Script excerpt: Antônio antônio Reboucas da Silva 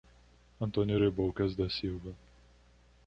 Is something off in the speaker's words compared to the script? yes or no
yes